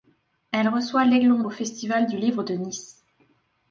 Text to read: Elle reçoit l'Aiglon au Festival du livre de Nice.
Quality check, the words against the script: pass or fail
pass